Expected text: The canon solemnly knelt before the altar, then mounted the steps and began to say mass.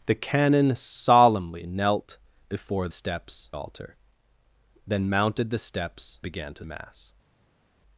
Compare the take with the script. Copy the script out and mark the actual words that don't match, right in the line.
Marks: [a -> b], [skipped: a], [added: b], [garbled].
The canon solemnly knelt before [the -> steps] altar, then mounted the steps [skipped: and] began to [skipped: say] mass.